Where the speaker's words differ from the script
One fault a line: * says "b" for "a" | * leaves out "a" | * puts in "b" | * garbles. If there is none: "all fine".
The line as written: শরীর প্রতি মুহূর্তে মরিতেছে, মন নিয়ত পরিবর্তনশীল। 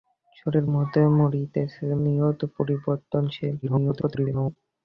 * leaves out "প্রতি"
* leaves out "মন"
* garbles